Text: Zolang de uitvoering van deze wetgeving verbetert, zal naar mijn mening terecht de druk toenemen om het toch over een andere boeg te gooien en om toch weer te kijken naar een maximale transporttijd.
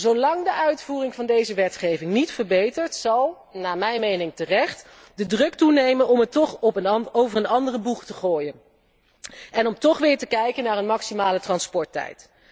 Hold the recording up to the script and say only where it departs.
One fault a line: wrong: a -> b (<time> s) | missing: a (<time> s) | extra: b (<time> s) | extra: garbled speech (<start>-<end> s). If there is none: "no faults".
extra: niet (2.1 s)